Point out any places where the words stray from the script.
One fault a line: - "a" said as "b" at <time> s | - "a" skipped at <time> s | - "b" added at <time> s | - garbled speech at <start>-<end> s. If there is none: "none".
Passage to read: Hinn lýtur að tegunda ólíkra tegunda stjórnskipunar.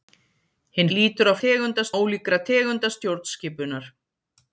none